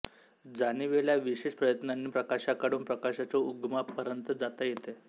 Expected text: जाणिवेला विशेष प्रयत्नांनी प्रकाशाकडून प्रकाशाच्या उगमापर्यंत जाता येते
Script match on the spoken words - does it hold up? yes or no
yes